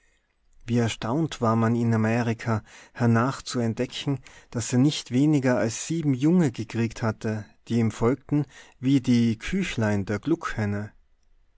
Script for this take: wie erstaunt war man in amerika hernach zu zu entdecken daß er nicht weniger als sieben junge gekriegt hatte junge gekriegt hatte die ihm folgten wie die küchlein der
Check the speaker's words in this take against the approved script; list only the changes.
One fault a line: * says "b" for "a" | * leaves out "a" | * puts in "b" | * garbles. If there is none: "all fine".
* leaves out "zu"
* leaves out "junge gekriegt hatte"